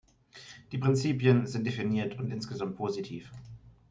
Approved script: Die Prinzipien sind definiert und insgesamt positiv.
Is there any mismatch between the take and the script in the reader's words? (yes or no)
no